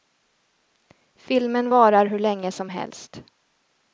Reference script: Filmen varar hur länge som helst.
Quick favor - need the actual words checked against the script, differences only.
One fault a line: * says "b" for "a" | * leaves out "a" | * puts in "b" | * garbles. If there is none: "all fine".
all fine